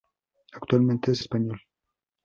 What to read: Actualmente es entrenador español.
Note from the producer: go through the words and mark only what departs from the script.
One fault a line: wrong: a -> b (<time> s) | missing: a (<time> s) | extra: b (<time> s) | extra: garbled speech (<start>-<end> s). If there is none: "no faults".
missing: entrenador (1.2 s)